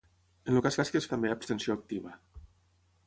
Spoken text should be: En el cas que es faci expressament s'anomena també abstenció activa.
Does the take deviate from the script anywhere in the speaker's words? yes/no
yes